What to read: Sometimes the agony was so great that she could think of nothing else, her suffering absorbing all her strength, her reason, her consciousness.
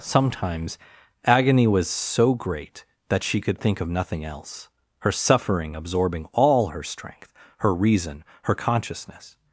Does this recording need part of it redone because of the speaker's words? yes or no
yes